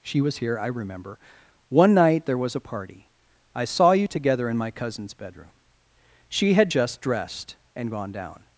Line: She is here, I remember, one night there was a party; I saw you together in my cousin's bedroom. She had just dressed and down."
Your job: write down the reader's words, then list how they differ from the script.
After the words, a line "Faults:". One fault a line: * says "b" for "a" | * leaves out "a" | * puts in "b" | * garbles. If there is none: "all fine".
She was here, I remember, one night there was a party; I saw you together in my cousin's bedroom. She had just dressed and gone down."
Faults:
* says "was" for "is"
* puts in "gone"